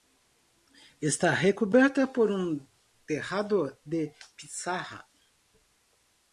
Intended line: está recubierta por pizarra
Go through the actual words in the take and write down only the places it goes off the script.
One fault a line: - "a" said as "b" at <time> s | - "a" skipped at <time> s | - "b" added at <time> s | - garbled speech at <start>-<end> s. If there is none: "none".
- "un tejado de" added at 2.3 s